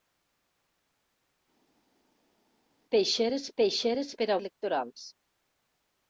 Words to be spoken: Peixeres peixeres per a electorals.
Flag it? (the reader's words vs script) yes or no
no